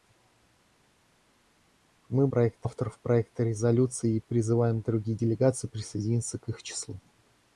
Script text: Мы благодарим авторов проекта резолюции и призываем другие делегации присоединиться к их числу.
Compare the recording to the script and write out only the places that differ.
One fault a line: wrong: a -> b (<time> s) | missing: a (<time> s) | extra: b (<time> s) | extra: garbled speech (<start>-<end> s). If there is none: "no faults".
wrong: благодарим -> проекта (2.3 s)